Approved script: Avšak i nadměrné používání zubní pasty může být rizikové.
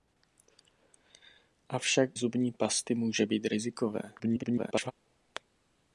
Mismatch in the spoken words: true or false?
true